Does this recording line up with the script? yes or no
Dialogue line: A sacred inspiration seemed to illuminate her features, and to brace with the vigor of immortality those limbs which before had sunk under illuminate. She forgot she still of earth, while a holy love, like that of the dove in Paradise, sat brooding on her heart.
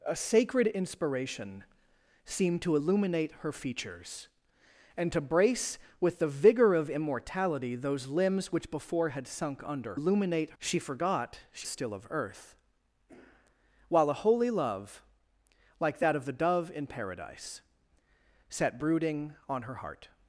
yes